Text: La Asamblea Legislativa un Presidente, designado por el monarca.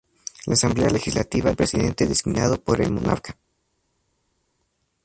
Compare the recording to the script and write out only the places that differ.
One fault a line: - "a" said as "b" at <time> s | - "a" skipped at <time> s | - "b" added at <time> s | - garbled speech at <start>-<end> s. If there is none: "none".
none